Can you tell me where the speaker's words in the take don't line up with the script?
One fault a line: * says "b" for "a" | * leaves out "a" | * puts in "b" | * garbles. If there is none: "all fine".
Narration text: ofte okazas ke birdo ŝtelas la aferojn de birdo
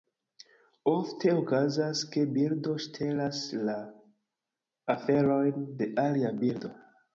* puts in "alia"